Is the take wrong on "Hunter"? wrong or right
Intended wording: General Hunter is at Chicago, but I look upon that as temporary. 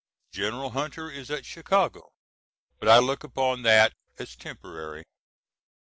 right